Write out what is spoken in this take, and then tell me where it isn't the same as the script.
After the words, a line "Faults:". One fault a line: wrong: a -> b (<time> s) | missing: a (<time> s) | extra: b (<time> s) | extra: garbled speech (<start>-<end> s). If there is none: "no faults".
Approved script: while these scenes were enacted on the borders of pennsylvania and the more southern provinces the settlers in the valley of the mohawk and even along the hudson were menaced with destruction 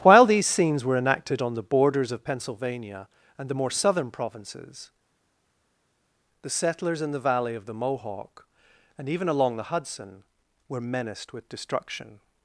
while these scenes were enacted on the borders of pennsylvania and the more southern provinces the settlers in the valley of the mohawk and even along the hudson were menaced with destruction
Faults:
no faults